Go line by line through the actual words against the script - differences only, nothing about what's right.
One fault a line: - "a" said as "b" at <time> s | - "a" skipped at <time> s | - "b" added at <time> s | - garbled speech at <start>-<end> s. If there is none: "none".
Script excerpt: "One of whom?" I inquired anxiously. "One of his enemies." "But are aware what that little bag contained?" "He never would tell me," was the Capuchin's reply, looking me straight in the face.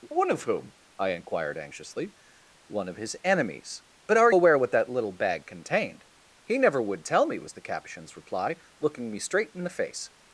none